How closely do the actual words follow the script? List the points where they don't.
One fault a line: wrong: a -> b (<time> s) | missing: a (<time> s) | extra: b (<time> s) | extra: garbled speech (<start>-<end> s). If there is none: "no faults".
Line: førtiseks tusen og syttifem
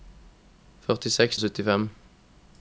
missing: tusen (1.4 s)